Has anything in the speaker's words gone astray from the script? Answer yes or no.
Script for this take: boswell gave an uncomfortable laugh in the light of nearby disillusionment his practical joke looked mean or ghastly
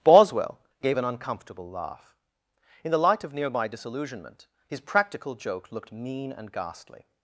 yes